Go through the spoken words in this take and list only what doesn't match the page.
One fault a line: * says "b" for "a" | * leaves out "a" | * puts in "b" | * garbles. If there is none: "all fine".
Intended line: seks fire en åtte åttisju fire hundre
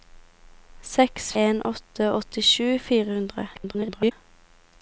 * leaves out "fire"
* garbles